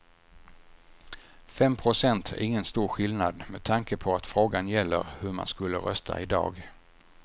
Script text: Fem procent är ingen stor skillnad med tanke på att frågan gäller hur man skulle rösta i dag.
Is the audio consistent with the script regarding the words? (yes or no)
yes